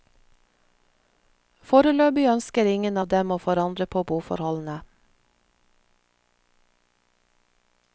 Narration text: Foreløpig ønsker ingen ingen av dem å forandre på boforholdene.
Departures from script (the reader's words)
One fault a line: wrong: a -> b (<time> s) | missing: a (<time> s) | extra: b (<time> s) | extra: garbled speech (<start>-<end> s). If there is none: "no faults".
missing: ingen (3.0 s)